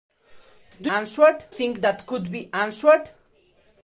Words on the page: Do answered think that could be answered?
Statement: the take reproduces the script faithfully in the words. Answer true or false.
true